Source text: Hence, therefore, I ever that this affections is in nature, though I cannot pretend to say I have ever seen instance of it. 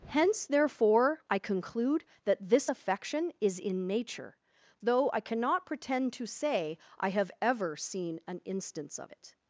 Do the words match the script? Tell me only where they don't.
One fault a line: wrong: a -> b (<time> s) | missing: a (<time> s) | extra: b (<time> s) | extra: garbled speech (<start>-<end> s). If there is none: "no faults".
wrong: ever -> conclude (1.4 s)
wrong: affections -> affection (2.7 s)
extra: an (8.3 s)